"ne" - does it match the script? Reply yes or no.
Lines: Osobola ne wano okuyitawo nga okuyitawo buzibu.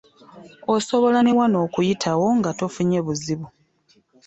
yes